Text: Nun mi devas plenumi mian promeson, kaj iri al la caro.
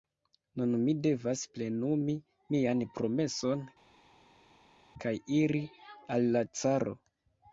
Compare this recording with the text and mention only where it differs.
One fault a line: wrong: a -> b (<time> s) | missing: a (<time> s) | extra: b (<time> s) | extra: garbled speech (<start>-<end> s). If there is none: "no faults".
no faults